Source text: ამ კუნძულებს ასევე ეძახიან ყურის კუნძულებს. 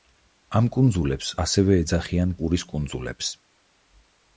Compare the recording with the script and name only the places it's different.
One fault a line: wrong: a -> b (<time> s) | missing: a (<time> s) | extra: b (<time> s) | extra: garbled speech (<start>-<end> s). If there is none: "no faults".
no faults